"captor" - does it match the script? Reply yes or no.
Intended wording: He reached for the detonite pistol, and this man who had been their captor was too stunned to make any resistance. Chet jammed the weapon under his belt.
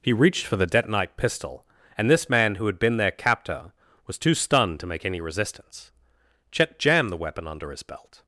yes